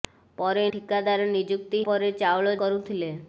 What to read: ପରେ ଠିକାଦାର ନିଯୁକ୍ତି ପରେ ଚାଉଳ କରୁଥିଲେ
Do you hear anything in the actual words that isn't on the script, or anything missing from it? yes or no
no